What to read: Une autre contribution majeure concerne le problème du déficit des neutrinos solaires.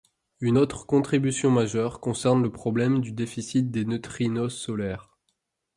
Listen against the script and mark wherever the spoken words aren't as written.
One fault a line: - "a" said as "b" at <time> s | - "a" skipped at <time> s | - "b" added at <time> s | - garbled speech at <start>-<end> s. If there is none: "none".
none